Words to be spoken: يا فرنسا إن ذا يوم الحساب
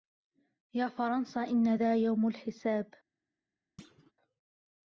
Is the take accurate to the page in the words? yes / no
yes